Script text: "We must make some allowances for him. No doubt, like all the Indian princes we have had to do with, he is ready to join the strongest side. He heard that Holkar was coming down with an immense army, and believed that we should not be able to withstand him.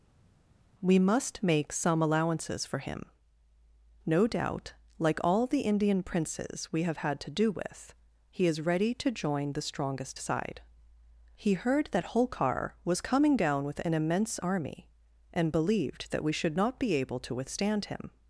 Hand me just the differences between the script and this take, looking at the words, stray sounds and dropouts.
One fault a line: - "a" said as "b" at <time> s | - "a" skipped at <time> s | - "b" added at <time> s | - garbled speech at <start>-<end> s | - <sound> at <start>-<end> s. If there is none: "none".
none